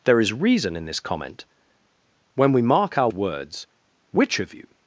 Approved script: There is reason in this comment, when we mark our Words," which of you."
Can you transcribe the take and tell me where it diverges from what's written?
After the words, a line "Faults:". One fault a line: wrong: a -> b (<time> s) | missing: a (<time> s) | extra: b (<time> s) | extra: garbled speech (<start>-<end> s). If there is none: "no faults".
There is reason in this comment, when we mark our Words," which of you."
Faults:
no faults